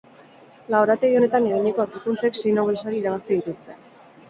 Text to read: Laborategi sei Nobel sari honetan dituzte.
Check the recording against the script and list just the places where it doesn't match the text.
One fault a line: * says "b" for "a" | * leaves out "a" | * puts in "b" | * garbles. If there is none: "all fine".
* puts in "honetan eginiko aurkikuntzek"
* says "irabazi" for "honetan"